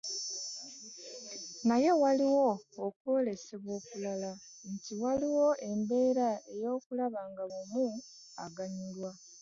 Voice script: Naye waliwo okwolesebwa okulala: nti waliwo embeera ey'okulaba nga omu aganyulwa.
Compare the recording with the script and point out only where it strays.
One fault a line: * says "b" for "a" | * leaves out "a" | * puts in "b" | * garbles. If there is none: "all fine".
all fine